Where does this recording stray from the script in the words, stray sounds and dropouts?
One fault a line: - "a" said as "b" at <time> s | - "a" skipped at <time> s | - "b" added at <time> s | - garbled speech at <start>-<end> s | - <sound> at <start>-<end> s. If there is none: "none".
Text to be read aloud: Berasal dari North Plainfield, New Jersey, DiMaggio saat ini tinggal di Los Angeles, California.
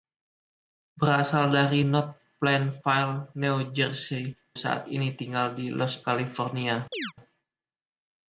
- "DiMaggio" skipped at 4.3 s
- "Angeles" skipped at 6.1 s
- chirp at 6.9-7.1 s